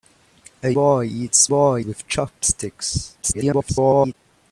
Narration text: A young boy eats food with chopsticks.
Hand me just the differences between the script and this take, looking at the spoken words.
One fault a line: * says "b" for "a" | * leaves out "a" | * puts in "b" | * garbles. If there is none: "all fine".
* leaves out "young"
* says "boy" for "food"
* garbles